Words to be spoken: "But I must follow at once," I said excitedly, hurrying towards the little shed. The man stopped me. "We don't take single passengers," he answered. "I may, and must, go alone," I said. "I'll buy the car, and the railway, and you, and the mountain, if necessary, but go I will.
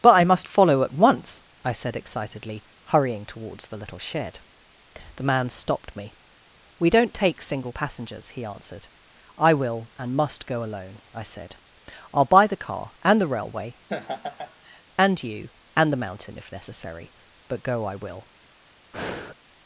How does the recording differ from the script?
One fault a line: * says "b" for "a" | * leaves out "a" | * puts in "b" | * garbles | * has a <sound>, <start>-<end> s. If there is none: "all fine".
* says "will" for "may"
* has a laugh, 13.9-14.8 s
* has a breath, 18.9-19.4 s